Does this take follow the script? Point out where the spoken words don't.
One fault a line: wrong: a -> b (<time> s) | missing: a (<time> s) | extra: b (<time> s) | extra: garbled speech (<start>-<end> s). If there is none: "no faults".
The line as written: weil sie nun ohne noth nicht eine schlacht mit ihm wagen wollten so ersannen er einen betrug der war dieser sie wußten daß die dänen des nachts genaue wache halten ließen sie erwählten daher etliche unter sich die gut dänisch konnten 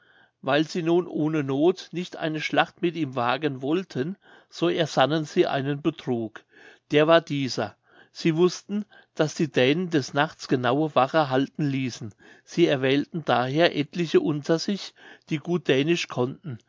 wrong: er -> sie (5.2 s)